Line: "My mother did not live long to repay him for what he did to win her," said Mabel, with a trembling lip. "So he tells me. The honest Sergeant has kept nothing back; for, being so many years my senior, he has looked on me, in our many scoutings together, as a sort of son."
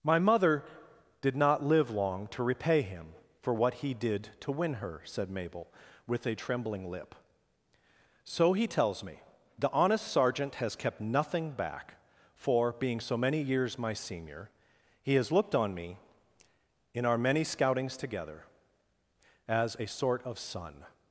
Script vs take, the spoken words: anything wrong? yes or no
no